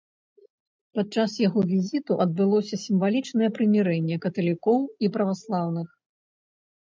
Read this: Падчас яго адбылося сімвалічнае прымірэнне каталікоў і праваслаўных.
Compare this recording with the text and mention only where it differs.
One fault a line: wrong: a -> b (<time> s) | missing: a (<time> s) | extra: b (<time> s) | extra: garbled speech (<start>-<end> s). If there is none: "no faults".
extra: візіту (1.7 s)